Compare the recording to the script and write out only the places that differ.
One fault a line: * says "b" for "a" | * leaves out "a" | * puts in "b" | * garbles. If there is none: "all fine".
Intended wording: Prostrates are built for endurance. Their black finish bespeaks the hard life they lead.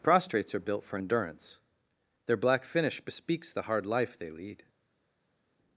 all fine